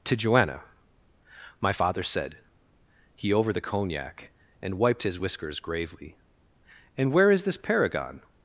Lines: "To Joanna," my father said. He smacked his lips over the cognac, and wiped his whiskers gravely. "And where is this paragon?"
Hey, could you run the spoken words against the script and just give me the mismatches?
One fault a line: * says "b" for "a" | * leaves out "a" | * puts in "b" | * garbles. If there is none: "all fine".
* leaves out "smacked his lips"